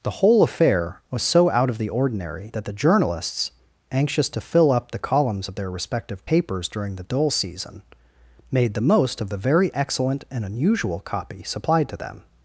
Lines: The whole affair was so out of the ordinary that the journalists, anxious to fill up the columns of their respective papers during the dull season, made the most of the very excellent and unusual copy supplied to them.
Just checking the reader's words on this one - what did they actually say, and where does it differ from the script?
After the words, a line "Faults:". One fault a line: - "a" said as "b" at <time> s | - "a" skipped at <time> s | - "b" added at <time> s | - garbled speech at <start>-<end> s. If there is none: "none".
The whole affair was so out of the ordinary that the journalists, anxious to fill up the columns of their respective papers during the dull season, made the most of the very excellent and unusual copy supplied to them.
Faults:
none